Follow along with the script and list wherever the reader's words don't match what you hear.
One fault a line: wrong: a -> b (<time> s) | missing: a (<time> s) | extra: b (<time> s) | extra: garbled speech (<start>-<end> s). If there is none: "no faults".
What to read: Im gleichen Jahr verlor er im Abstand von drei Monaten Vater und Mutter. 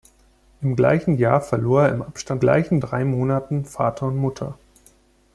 wrong: von -> gleichen (2.4 s)